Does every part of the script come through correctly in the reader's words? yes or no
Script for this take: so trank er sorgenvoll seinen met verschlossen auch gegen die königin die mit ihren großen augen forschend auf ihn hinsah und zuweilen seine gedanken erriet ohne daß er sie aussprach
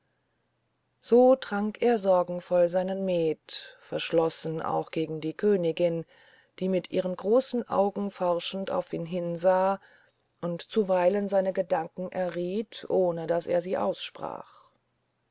yes